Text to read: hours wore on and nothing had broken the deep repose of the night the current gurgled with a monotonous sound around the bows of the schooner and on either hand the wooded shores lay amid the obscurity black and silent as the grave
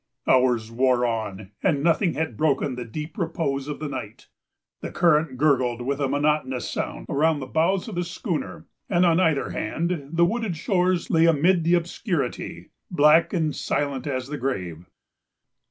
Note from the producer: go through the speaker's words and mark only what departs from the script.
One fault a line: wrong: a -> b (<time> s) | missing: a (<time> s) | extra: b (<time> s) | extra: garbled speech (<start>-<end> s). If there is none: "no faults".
no faults